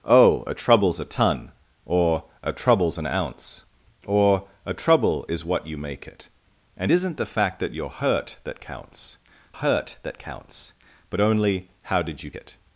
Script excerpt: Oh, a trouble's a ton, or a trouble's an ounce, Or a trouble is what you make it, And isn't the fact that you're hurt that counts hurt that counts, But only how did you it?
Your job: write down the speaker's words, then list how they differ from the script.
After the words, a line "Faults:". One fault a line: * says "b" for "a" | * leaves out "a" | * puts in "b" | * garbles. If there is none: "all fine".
Oh, a trouble's a ton, or a trouble's an ounce, Or a trouble is what you make it, And isn't the fact that you're hurt that counts hurt that counts, But only how did you it?
Faults:
all fine